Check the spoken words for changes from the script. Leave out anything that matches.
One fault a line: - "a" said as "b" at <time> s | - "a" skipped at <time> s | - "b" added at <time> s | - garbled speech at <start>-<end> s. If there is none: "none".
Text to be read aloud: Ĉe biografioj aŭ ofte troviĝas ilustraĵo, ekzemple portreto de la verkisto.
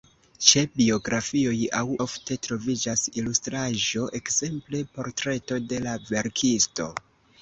none